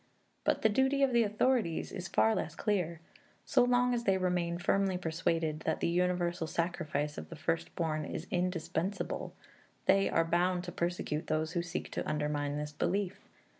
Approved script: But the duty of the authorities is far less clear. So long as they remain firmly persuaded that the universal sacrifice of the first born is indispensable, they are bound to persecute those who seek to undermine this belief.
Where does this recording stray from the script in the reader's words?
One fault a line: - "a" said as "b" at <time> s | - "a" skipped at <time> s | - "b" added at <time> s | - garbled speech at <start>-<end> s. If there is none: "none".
none